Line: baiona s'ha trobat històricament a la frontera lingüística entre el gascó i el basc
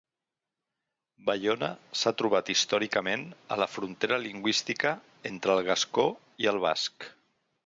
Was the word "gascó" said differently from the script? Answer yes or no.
no